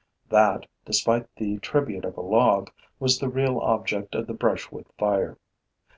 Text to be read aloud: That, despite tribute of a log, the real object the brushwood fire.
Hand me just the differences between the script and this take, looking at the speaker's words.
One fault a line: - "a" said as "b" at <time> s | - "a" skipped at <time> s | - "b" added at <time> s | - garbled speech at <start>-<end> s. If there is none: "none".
- "the" added at 1.4 s
- "was" added at 3.0 s
- "of" added at 4.2 s